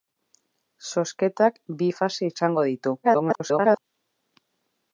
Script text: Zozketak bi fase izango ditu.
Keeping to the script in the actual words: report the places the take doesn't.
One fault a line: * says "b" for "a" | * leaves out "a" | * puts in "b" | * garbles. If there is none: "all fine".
* garbles